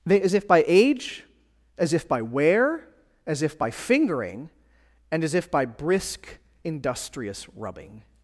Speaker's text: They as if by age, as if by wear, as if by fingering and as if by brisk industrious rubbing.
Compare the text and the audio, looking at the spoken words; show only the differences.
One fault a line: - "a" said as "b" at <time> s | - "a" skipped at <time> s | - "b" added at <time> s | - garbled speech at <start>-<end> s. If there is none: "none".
none